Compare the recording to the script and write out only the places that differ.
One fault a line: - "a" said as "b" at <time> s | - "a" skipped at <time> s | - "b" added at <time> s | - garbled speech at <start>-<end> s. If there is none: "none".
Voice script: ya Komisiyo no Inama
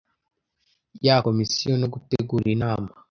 - "gutegura" added at 1.9 s